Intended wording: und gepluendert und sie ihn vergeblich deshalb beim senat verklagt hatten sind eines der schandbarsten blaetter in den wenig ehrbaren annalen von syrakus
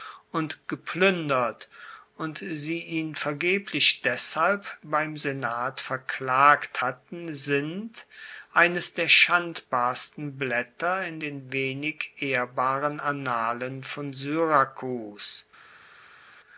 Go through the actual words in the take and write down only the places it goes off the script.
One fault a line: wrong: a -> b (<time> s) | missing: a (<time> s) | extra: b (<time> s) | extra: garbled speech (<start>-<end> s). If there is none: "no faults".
no faults